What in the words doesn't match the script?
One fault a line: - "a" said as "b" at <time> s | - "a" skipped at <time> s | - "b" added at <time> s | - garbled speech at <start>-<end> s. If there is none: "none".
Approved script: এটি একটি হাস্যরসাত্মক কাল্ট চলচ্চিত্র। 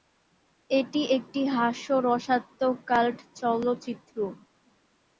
none